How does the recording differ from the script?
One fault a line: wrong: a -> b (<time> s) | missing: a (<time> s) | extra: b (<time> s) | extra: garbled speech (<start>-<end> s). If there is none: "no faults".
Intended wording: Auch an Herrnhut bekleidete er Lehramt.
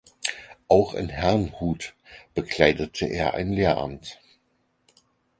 wrong: an -> in (0.9 s)
extra: ein (3.3 s)